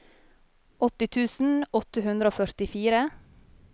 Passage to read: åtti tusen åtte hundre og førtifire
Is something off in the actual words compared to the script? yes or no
no